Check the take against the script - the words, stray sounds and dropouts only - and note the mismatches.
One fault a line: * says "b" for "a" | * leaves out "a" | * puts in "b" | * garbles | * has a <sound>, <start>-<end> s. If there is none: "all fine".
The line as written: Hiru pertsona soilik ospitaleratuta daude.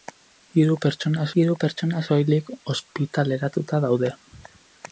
* puts in "hiru pertsona"